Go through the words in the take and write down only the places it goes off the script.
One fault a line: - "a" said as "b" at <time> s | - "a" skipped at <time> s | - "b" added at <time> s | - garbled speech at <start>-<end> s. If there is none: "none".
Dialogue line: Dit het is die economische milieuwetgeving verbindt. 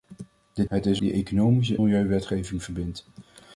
none